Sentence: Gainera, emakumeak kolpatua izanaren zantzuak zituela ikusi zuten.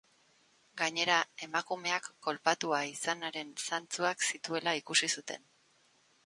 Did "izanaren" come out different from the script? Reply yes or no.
no